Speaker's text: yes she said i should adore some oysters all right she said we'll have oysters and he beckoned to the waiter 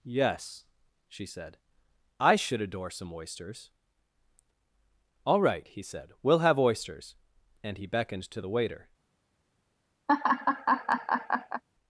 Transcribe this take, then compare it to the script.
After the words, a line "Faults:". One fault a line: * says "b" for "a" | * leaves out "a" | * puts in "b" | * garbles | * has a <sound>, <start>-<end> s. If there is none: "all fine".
yes she said i should adore some oysters all right he said we'll have oysters and he beckoned to the waiter
Faults:
* says "he" for "she"
* has a laugh, 10.1-11.6 s